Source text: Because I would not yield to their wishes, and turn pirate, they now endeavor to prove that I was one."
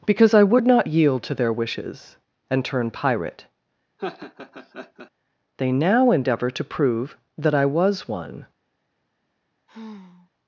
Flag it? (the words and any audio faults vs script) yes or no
yes